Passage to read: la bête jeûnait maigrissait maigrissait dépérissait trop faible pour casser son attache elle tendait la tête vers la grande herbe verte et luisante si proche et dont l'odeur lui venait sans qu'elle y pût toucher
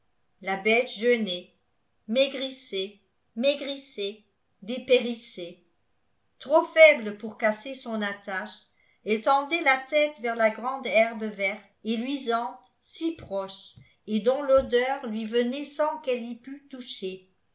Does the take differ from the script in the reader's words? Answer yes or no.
no